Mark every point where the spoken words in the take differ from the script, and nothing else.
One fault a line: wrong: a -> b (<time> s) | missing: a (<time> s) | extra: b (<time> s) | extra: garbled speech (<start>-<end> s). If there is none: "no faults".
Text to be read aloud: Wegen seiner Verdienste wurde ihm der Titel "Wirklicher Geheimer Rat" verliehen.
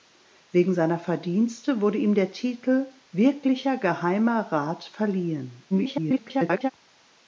extra: garbled speech (5.7-6.7 s)